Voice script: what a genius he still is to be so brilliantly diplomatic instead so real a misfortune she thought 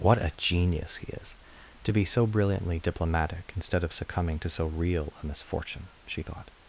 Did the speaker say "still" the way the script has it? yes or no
no